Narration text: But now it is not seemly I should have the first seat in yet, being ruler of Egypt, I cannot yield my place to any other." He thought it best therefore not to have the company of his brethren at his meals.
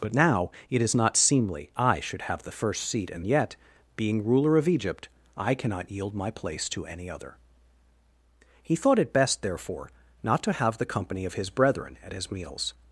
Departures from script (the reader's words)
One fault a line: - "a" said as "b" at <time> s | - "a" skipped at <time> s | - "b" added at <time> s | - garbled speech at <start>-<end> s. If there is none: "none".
none